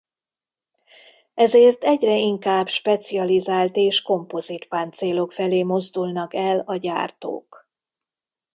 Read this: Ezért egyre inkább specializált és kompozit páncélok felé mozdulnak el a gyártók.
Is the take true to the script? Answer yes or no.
yes